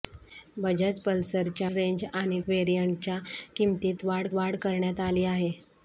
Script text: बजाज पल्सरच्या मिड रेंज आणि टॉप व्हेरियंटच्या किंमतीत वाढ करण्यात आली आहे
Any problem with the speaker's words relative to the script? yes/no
yes